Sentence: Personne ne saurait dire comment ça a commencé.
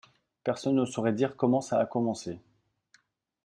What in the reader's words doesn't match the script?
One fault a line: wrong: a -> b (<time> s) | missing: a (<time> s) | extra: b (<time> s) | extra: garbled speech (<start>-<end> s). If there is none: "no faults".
no faults